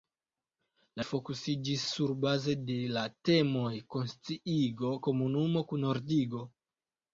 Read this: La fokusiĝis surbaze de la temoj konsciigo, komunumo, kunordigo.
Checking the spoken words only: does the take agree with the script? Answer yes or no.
yes